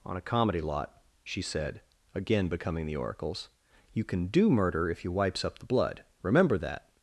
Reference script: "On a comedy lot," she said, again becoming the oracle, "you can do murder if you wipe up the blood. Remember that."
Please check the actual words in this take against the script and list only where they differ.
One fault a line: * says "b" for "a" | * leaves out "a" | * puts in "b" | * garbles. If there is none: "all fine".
* says "oracles" for "oracle"
* says "wipes" for "wipe"